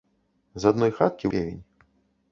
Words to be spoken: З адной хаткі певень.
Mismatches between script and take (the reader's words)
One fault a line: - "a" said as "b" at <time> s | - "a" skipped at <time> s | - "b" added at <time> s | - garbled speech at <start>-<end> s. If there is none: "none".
none